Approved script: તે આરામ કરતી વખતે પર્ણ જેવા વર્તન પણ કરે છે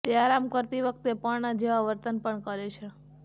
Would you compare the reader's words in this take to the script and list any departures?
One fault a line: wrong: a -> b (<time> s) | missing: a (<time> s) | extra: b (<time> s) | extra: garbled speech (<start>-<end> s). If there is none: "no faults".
no faults